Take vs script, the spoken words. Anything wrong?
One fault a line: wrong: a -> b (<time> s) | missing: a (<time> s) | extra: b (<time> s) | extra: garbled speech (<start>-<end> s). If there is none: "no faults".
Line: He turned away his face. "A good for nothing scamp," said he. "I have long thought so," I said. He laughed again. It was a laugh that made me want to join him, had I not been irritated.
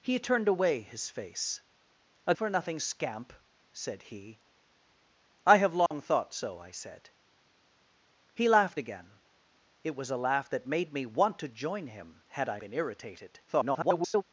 missing: good (2.3 s)
missing: not (12.6 s)
extra: garbled speech (13.5-14.2 s)